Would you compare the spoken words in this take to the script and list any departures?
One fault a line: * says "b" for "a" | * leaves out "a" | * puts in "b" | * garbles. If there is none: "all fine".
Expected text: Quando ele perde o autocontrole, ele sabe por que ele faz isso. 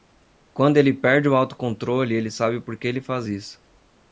all fine